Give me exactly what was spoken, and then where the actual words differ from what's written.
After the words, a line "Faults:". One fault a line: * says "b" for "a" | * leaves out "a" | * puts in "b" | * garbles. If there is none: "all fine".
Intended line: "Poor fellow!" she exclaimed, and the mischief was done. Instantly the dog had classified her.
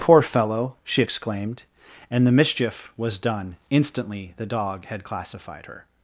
"Poor fellow!" she exclaimed, and the mischief was done. Instantly the dog had classified her.
Faults:
all fine